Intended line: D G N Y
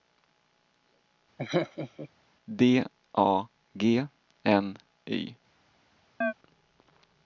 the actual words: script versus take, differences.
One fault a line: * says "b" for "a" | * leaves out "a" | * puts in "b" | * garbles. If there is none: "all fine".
* puts in "A"